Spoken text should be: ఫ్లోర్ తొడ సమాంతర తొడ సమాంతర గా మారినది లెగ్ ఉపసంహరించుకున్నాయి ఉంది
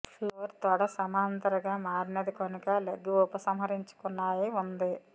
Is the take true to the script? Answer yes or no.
no